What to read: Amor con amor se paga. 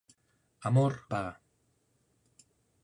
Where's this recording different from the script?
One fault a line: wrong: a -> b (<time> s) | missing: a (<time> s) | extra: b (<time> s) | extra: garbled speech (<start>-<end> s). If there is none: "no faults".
missing: con amor se (0.9 s)